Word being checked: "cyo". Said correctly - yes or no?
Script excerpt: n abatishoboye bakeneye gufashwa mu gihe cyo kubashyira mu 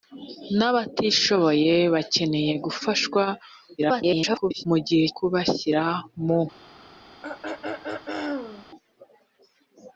no